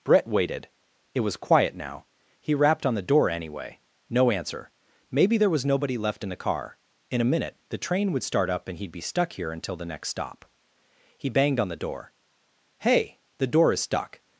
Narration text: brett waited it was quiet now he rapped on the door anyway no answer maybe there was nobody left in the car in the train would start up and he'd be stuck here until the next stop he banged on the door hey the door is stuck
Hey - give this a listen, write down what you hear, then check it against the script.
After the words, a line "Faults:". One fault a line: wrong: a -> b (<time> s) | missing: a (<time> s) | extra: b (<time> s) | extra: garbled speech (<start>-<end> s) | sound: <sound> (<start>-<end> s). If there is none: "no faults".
brett waited it was quiet now he rapped on the door anyway no answer maybe there was nobody left in the car in a minute the train would start up and he'd be stuck here until the next stop he banged on the door hey the door is stuck
Faults:
extra: a minute (7.2 s)